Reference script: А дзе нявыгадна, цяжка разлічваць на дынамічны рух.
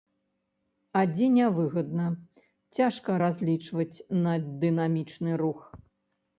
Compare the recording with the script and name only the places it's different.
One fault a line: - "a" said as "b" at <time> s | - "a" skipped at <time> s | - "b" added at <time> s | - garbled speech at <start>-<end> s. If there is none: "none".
none